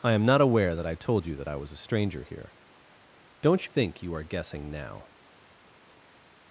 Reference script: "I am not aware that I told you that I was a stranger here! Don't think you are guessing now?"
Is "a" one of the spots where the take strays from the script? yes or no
no